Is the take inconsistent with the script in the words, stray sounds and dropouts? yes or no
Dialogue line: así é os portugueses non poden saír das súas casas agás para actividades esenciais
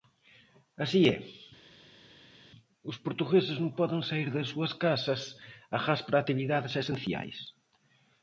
no